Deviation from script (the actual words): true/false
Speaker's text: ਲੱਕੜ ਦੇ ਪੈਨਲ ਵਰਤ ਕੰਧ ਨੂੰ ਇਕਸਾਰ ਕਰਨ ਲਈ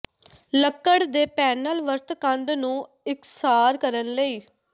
false